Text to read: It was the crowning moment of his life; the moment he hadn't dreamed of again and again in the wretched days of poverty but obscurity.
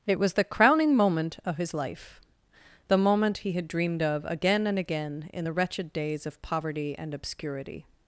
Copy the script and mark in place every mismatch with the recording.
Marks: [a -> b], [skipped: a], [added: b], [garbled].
It was the crowning moment of his life; the moment he [hadn't -> had] dreamed of again and again in the wretched days of poverty [but -> and] obscurity.